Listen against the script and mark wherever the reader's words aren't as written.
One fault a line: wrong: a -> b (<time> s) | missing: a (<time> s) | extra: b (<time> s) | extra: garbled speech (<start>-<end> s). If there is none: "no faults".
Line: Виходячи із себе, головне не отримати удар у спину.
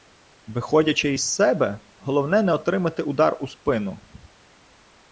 no faults